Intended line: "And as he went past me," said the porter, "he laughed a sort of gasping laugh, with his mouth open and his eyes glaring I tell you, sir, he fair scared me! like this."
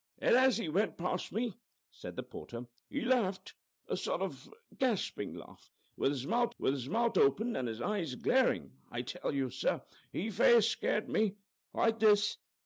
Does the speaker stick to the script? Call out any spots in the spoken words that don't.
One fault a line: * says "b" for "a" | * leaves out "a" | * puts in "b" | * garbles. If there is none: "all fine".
* puts in "with his mouth"